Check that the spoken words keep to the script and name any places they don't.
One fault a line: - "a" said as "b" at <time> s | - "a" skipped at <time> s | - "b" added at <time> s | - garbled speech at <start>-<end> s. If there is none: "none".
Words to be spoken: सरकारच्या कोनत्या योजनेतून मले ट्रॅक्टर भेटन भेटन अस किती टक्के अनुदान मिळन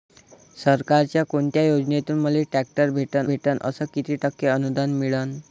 none